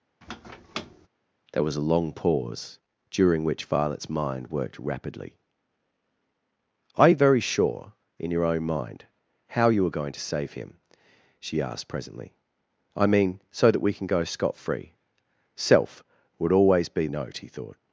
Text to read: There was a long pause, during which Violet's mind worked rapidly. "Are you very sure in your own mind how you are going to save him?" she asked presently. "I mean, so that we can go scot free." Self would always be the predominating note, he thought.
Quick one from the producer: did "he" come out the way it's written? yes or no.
yes